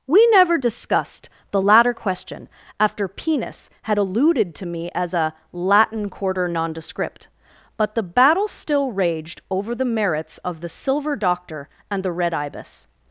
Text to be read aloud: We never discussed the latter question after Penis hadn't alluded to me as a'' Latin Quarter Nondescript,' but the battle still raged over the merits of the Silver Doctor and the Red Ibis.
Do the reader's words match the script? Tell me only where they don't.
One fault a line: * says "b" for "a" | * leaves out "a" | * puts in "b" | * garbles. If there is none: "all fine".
* says "had" for "hadn't"